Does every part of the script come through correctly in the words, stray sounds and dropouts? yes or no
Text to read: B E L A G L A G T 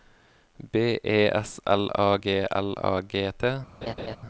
no